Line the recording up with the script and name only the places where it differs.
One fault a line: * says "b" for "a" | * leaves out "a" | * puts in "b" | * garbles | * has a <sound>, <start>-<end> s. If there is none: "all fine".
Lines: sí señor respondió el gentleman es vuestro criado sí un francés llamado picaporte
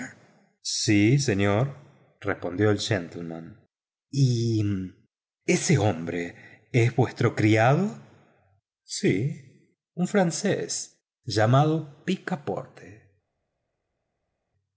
* puts in "y ese hombre"